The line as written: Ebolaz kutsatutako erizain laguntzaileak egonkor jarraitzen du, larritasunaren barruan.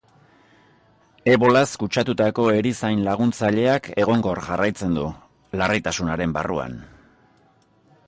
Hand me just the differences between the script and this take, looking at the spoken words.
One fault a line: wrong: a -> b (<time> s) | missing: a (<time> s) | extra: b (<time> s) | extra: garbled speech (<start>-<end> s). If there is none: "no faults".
no faults